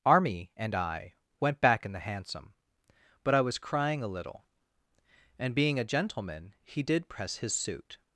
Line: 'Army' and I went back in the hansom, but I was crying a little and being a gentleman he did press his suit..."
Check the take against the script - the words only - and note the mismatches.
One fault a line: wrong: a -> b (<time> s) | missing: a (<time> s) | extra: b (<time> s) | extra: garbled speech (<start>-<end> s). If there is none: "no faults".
no faults